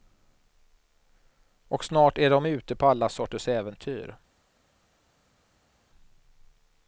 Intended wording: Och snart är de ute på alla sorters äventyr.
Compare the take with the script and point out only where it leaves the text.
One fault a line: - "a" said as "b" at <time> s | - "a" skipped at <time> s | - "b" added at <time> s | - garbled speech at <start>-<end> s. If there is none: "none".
none